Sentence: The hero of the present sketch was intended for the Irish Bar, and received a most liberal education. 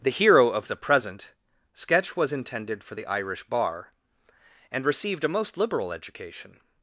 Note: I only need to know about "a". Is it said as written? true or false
true